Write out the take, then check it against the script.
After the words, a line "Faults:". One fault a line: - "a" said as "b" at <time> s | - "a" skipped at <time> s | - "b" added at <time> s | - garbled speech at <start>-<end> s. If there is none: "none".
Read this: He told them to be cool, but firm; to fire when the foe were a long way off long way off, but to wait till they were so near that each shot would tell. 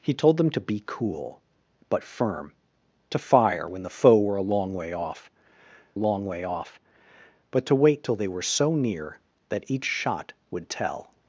He told them to be cool, but firm; to fire when the foe were a long way off long way off, but to wait till they were so near that each shot would tell.
Faults:
none